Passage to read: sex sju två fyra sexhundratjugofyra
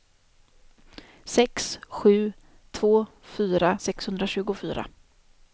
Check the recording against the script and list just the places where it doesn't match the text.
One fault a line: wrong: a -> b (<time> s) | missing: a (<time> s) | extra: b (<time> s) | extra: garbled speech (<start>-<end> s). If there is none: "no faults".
no faults